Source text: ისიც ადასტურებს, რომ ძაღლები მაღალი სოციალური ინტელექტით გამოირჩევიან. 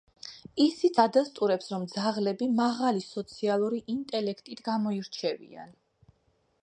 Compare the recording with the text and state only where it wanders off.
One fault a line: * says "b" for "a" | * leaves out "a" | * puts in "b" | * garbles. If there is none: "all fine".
all fine